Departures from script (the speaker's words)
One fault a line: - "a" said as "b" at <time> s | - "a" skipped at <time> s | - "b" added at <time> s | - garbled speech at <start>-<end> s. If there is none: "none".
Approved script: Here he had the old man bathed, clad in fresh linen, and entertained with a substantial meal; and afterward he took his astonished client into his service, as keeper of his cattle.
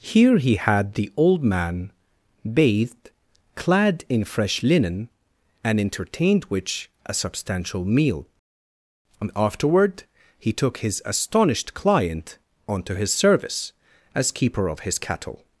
- "with" said as "which" at 6.5 s
- "into" said as "onto" at 12.7 s